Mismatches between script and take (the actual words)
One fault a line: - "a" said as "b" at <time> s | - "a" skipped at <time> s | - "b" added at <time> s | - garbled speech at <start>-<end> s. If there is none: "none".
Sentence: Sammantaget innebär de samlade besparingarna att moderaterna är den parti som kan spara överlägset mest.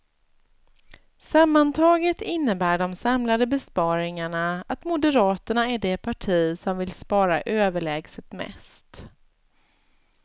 - "den" said as "det" at 5.8 s
- "kan" said as "vill" at 6.8 s